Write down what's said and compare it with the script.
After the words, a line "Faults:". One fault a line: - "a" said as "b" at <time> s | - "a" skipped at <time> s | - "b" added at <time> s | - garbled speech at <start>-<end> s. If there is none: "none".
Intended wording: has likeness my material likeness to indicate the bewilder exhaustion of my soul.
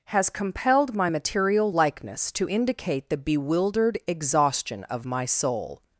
has compelled my material likeness to indicate the bewildered exhaustion of my soul.
Faults:
- "likeness" said as "compelled" at 0.3 s
- "bewilder" said as "bewildered" at 3.2 s